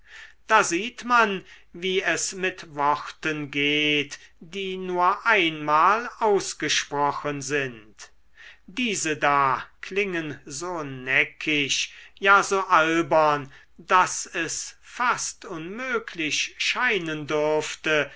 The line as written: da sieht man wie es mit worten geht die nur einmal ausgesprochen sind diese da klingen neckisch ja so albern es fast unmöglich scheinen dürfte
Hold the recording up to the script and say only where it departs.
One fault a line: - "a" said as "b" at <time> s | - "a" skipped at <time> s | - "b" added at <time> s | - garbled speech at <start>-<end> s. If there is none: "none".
- "so" added at 10.4 s
- "daß" added at 13.8 s